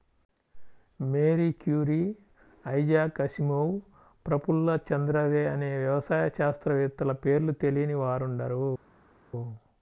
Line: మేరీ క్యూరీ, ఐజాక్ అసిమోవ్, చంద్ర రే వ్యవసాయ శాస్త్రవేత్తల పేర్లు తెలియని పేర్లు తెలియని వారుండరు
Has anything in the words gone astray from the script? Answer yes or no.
yes